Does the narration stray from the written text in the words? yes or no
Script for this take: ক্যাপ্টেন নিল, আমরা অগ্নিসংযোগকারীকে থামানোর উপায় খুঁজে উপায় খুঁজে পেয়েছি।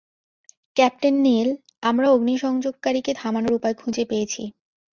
yes